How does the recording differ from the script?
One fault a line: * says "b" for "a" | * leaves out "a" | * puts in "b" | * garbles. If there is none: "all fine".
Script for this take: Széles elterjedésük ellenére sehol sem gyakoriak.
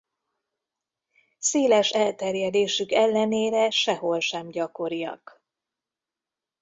all fine